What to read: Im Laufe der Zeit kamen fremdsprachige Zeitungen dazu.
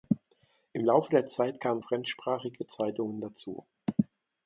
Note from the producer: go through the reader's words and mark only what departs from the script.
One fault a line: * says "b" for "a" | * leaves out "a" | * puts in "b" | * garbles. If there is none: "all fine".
all fine